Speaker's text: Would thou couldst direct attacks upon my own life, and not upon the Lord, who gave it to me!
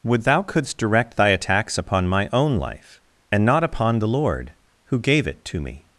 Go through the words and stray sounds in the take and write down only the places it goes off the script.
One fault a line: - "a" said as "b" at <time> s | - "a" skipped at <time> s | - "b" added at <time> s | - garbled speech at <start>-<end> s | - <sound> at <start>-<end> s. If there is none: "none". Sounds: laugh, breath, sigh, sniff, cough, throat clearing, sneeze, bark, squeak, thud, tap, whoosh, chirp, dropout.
- "thy" added at 1.1 s